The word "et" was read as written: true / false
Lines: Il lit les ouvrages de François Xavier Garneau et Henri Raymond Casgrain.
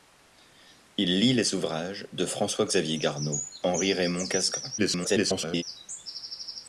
false